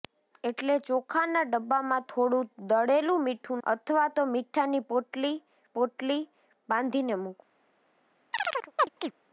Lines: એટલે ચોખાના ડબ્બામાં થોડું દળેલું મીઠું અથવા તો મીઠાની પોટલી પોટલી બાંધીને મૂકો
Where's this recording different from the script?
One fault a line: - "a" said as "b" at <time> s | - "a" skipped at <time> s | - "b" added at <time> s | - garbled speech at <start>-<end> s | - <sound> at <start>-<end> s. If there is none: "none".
- chirp at 8.3-9.1 s